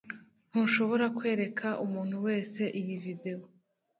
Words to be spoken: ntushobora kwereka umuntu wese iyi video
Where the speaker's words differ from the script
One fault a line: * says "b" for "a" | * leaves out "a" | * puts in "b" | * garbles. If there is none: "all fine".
all fine